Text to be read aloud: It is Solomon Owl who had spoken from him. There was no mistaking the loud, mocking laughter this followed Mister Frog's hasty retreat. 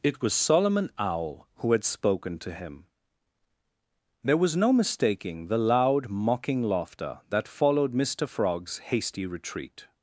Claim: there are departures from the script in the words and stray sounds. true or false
true